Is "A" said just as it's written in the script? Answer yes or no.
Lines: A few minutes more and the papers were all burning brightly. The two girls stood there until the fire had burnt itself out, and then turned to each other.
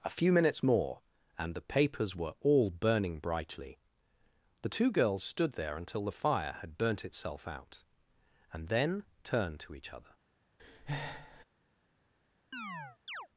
yes